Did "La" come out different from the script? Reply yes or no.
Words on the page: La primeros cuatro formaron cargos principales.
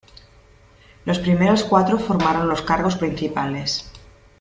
yes